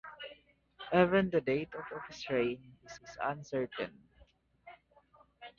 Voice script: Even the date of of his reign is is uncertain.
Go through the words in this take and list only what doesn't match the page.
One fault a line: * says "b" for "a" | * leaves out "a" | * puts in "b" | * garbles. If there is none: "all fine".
all fine